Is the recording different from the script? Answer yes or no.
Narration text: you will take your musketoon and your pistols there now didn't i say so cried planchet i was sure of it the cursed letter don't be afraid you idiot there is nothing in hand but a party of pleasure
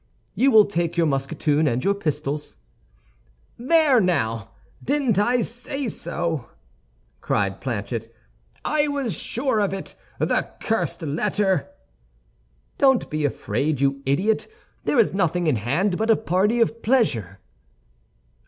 no